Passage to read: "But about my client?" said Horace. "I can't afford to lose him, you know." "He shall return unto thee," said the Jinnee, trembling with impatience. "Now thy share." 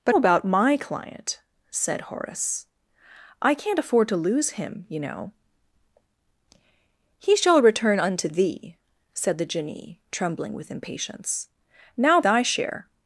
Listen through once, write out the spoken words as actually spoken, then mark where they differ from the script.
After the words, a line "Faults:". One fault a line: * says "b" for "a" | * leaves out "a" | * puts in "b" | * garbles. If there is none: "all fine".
"But about my client?" said Horace. "I can't afford to lose him, you know." "He shall return unto thee," said the Jinnee, trembling with impatience. "Now thy share."
Faults:
all fine